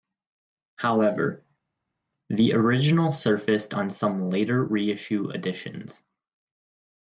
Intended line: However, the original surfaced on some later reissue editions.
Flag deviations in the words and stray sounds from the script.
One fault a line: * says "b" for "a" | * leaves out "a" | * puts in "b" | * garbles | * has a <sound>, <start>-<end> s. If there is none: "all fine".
all fine